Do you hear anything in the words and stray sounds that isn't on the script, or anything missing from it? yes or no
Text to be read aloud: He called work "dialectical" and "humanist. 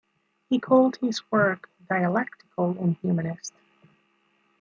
yes